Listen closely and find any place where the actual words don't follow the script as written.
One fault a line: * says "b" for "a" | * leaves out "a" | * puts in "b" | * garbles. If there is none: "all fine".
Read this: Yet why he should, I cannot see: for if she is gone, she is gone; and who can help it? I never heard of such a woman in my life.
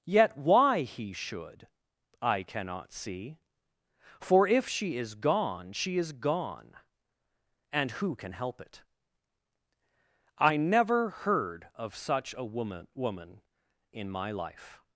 * puts in "woman"